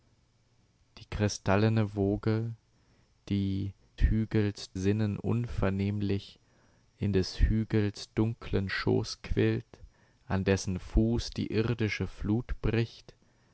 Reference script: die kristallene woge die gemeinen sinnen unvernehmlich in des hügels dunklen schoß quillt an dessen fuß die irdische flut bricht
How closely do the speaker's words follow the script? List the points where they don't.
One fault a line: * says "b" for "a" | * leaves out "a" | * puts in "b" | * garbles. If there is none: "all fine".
* says "hügels" for "gemeinen"